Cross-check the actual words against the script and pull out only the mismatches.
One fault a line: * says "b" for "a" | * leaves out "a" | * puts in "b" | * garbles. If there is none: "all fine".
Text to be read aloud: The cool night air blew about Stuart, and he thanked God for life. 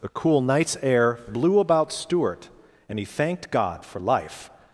* says "nights" for "night"